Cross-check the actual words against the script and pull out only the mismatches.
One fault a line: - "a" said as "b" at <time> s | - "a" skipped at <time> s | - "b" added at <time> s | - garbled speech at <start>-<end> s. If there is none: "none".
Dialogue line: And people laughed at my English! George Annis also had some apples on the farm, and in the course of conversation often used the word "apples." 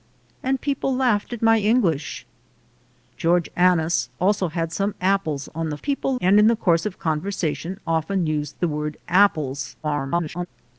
- "farm" said as "people" at 5.8 s
- garbled speech at 9.8-10.5 s